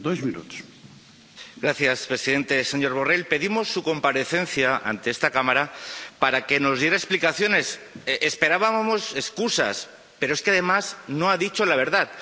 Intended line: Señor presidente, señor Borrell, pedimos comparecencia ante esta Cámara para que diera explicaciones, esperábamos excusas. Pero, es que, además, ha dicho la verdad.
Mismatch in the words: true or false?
true